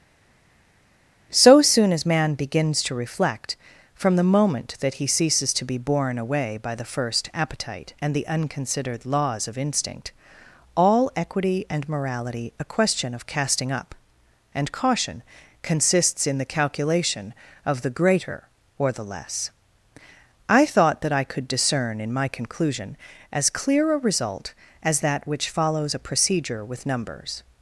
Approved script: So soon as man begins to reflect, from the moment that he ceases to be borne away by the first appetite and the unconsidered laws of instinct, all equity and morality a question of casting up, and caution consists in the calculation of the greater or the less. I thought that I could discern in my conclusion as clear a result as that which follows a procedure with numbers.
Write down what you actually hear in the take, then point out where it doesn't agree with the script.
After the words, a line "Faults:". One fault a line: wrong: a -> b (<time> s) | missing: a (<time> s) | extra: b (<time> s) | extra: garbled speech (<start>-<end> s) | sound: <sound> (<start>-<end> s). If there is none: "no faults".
So soon as man begins to reflect, from the moment that he ceases to be borne away by the first appetite and the unconsidered laws of instinct, all equity and morality a question of casting up, and caution consists in the calculation of the greater or the less. I thought that I could discern in my conclusion as clear a result as that which follows a procedure with numbers.
Faults:
no faults